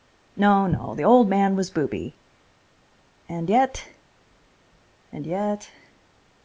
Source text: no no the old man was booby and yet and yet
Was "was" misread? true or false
false